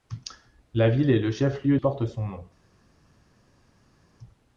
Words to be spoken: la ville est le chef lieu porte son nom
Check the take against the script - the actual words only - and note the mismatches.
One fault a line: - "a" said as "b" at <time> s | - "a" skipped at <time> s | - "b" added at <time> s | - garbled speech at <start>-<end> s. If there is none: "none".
none